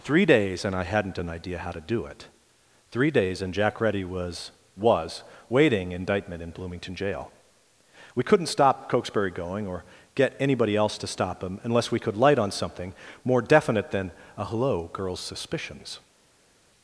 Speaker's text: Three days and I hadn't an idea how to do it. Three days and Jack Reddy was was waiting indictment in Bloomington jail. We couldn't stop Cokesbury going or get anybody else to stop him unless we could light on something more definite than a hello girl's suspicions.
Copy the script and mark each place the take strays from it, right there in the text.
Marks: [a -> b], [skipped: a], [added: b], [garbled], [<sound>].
Three days and I hadn't an idea how to do it. Three days and Jack Reddy was was waiting indictment in Bloomington jail. We couldn't stop Cokesbury going or get anybody else to stop him unless we could light on something more definite than a hello girl's suspicions.